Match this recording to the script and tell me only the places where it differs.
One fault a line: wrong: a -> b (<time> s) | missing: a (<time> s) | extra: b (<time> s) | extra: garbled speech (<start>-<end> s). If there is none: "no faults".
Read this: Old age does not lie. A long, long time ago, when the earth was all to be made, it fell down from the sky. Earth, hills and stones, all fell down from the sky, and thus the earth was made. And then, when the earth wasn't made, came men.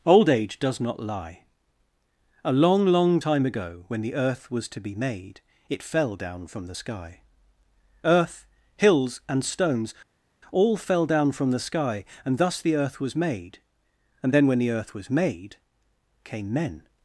missing: all (4.7 s)
wrong: wasn't -> was (14.9 s)